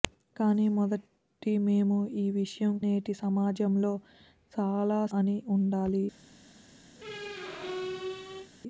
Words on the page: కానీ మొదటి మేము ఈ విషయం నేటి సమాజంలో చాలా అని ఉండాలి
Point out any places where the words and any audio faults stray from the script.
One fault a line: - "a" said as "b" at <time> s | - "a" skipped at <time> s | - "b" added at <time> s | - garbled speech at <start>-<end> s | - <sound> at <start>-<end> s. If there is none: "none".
- squeak at 7.0-8.5 s